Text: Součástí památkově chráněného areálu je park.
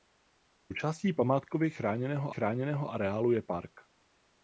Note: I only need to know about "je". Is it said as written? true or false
true